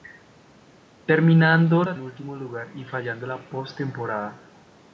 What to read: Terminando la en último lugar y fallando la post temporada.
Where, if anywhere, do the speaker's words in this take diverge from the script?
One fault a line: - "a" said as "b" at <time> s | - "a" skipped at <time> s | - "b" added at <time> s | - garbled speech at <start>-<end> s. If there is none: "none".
none